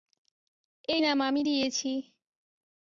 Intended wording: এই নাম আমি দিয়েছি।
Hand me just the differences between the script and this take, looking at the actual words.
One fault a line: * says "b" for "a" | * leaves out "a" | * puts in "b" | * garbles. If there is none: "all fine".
all fine